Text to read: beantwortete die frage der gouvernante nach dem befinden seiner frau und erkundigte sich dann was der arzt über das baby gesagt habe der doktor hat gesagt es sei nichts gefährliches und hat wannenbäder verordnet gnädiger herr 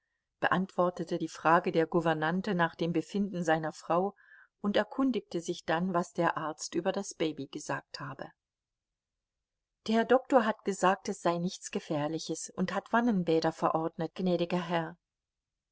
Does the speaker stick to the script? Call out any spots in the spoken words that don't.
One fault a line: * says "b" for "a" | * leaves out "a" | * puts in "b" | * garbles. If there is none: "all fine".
all fine